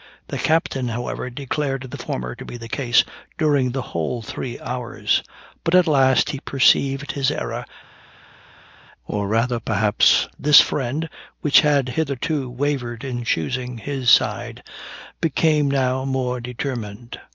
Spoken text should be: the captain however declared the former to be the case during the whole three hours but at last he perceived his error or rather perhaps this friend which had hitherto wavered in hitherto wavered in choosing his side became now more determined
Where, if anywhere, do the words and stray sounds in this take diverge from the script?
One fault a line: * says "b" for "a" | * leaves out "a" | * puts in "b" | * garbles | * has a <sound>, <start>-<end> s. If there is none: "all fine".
* leaves out "hitherto wavered in"